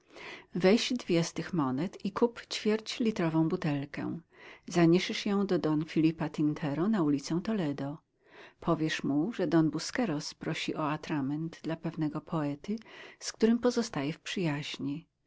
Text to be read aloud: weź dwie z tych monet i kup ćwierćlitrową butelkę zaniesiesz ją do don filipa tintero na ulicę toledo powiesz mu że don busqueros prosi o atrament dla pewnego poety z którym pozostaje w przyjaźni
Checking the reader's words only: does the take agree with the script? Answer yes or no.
yes